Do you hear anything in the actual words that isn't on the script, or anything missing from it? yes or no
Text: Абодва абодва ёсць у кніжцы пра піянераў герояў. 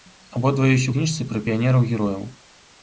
yes